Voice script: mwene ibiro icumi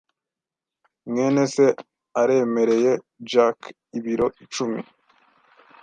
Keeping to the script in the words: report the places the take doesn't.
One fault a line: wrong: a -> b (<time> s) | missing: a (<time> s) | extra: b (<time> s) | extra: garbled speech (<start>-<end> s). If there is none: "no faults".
extra: se aremereye jack (1.5 s)